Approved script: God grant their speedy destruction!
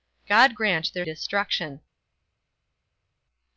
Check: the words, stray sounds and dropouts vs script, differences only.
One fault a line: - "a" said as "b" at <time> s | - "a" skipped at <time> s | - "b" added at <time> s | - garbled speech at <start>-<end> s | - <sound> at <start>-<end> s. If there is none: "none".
- "speedy" skipped at 1.0 s